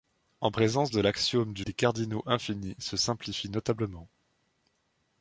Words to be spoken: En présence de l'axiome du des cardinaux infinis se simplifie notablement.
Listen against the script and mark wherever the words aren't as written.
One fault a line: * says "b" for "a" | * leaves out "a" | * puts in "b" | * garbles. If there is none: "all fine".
all fine